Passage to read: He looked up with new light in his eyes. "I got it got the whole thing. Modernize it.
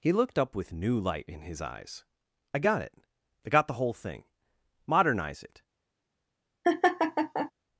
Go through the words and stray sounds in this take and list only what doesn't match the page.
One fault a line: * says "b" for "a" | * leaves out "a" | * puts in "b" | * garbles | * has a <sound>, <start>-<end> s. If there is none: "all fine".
* puts in "I"
* has a laugh, 6.6-7.5 s